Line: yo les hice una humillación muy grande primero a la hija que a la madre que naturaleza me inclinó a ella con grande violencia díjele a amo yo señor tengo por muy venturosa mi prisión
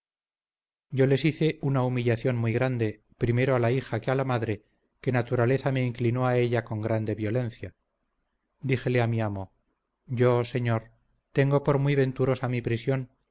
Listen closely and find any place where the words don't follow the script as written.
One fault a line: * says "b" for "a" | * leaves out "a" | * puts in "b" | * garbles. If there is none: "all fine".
* puts in "mi"